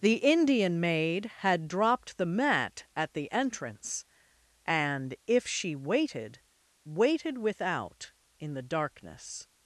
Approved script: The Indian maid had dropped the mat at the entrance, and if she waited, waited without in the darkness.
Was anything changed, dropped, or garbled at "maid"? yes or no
no